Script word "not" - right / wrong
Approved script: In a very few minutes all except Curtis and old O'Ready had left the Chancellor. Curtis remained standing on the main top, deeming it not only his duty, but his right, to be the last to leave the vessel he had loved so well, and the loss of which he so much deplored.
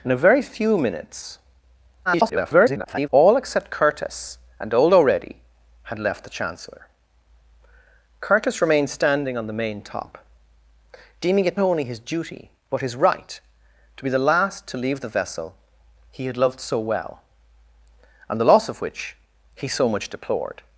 wrong